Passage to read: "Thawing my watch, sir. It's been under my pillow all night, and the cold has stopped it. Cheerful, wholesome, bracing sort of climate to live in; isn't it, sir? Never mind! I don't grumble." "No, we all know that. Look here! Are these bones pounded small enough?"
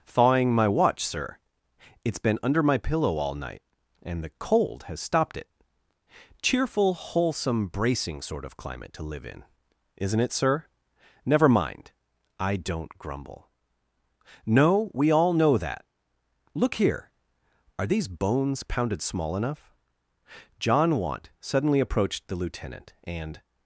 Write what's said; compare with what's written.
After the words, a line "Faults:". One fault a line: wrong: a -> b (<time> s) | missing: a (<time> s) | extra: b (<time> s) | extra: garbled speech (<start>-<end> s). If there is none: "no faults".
"Thawing my watch, sir. It's been under my pillow all night, and the cold has stopped it. Cheerful, wholesome, bracing sort of climate to live in; isn't it, sir? Never mind! I don't grumble." "No, we all know that. Look here! Are these bones pounded small enough?" John Want suddenly approached the lieutenant, and
Faults:
extra: John Want suddenly approached the lieutenant and (20.6 s)